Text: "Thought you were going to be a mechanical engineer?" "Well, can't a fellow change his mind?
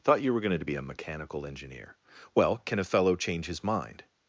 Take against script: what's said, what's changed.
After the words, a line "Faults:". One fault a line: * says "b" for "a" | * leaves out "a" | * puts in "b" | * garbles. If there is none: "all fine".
"Thought you were going to be a mechanical engineer?" "Well, can a fellow change his mind?
Faults:
* says "can" for "can't"